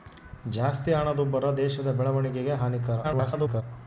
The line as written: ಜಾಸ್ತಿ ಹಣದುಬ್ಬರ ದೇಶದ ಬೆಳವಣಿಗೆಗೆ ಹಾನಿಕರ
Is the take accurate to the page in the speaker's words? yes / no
no